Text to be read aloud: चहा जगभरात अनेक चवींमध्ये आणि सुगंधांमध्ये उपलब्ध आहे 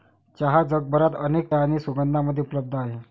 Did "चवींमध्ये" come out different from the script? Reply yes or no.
yes